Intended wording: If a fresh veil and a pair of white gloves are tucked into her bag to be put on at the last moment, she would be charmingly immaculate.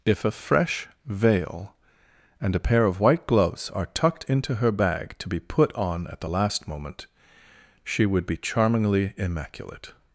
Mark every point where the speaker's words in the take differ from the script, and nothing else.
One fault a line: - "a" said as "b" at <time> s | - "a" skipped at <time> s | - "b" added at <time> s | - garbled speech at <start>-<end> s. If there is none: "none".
none